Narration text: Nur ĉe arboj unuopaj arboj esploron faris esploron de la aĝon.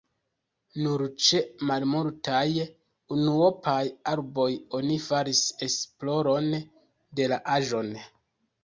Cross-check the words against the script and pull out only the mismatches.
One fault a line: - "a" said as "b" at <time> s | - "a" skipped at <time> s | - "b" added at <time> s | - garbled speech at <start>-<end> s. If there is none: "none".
- "arboj" said as "malmultaj" at 1.7 s
- "esploron" said as "oni" at 4.8 s